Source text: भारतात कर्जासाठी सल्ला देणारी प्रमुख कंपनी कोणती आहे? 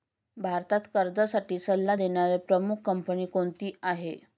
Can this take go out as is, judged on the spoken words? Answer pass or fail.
pass